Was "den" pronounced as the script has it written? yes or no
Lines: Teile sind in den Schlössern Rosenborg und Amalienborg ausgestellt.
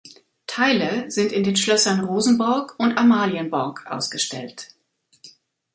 yes